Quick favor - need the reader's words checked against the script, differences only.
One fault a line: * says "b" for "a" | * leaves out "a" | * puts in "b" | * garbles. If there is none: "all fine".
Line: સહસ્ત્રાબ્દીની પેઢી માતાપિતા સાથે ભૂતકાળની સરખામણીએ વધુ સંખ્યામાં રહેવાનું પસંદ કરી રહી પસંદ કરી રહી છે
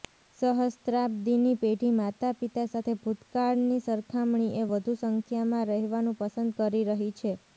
* leaves out "પસંદ કરી રહી"